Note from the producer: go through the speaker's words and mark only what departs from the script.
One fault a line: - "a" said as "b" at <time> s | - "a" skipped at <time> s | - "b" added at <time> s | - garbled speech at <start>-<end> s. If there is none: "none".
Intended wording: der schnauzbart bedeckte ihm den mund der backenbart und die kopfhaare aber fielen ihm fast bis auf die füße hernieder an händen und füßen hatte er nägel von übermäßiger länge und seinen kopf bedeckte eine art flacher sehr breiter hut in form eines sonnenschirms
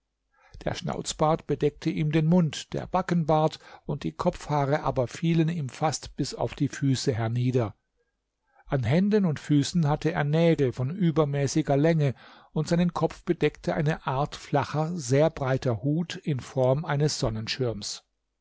none